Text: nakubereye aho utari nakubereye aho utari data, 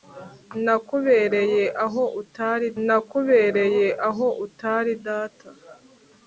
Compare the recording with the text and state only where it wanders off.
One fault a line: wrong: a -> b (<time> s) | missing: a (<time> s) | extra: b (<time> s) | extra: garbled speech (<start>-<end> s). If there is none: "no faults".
no faults